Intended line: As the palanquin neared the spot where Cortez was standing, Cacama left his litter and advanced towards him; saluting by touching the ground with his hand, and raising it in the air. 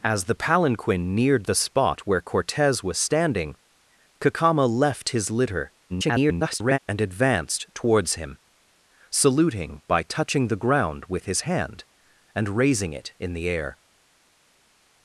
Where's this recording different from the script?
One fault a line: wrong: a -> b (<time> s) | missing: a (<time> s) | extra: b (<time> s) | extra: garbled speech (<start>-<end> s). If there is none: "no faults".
extra: garbled speech (5.9-6.8 s)